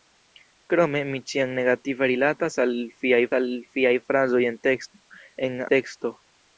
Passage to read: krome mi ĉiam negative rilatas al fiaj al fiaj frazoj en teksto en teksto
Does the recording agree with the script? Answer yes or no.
yes